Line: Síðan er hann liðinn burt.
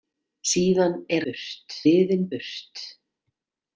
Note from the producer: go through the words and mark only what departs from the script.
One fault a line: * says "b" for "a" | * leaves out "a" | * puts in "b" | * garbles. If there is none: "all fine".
* says "burt" for "hann"